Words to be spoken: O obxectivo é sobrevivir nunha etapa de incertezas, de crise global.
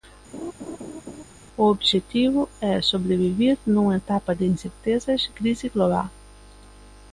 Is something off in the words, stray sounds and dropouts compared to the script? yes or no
yes